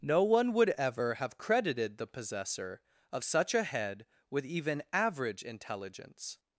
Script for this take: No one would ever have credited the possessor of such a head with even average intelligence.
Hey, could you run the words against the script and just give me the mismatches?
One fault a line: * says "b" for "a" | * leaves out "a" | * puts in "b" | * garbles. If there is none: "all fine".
all fine